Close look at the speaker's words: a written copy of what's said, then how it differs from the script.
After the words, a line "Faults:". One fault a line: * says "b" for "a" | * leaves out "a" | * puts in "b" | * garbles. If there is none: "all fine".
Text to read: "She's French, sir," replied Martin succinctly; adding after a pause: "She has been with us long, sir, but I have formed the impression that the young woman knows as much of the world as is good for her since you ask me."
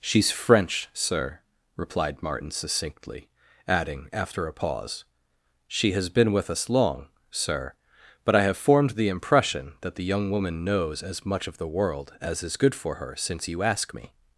"She's French, sir," replied Martin succinctly; adding after a pause: "She has been with us long, sir, but I have formed the impression that the young woman knows as much of the world as is good for her since you ask me."
Faults:
all fine